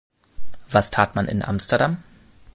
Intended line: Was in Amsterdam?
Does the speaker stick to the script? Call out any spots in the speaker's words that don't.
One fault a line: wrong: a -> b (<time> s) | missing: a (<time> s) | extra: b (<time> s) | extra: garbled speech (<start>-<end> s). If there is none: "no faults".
extra: tat man (0.9 s)